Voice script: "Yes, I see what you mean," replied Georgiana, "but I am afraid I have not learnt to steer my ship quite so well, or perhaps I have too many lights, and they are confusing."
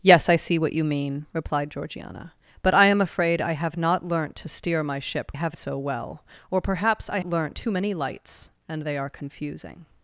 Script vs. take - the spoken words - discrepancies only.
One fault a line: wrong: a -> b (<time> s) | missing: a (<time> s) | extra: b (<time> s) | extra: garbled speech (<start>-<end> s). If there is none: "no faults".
wrong: quite -> have (5.3 s)
wrong: have -> learnt (7.2 s)